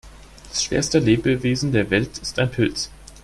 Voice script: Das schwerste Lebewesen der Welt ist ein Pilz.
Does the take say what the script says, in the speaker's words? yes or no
yes